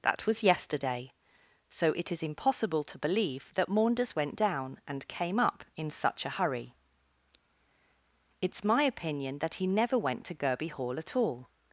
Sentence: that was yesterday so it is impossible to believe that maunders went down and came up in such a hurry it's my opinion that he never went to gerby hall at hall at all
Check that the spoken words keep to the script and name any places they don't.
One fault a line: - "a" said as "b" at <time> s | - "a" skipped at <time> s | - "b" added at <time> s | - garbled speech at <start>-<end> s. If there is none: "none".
- "hall at" skipped at 11.2 s